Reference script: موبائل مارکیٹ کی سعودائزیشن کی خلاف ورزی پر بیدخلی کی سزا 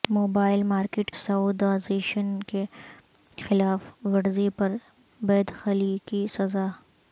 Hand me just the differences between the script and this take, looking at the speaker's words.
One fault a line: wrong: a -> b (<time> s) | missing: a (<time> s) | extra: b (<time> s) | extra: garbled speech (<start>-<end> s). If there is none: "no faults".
missing: کی (1.1 s)